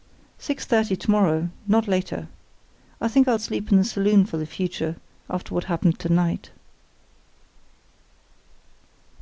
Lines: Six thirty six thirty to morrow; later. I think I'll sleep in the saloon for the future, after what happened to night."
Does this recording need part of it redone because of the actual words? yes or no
yes